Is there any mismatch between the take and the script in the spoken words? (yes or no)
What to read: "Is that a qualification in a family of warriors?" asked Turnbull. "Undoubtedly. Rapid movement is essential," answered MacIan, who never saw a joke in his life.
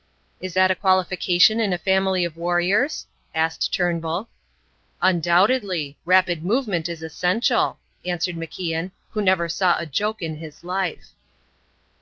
no